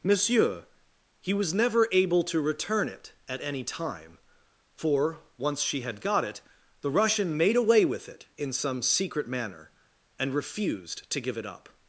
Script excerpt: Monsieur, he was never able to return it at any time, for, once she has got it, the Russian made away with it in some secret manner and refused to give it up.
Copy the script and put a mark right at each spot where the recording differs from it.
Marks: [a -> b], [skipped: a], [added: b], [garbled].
Monsieur, he was never able to return it at any time, for, once she [has -> had] got it, the Russian made away with it in some secret manner and refused to give it up.